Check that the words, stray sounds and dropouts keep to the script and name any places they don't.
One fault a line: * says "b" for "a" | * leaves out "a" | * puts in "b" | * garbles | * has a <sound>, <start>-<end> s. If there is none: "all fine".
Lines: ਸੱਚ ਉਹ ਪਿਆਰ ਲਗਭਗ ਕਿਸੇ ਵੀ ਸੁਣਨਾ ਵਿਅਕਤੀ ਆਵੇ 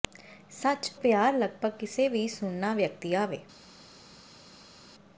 * leaves out "ਉਹ"